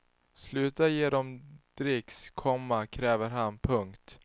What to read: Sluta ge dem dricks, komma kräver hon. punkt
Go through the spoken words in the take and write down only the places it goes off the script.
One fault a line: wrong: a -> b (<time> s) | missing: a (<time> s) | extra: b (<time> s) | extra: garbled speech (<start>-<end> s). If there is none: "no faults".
wrong: hon -> han (3.3 s)